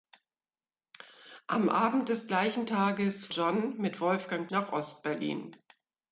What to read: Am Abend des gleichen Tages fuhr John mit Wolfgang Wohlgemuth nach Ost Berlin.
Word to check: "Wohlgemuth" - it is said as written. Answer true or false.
false